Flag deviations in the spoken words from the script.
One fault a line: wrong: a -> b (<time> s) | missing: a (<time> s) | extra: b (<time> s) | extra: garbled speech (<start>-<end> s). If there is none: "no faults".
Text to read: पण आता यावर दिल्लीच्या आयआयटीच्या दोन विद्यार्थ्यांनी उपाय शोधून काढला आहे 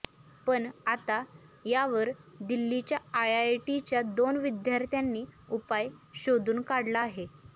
no faults